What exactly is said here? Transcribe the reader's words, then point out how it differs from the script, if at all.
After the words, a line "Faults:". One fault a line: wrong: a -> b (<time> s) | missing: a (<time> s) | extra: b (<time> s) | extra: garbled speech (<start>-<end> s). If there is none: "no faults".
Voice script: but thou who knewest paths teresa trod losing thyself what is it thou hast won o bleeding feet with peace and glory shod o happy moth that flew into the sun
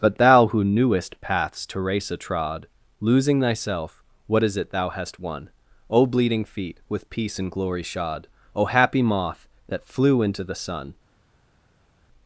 but thou who knewest paths teresa trod losing thyself what is it thou hast won o bleeding feet with peace and glory shod o happy moth that flew into the sun
Faults:
no faults